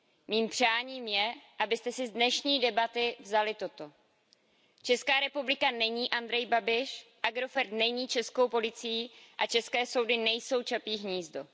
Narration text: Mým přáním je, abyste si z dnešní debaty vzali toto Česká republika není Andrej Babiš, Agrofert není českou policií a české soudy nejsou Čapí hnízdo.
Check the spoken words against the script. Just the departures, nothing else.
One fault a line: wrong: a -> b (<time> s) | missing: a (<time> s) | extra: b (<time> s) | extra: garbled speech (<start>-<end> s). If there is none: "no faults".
no faults